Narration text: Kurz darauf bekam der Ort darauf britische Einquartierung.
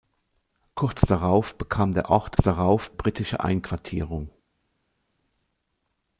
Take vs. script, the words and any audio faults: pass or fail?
pass